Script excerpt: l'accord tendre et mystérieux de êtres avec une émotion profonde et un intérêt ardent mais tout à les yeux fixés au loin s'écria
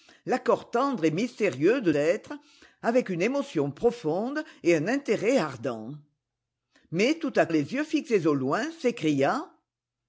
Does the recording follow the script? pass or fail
pass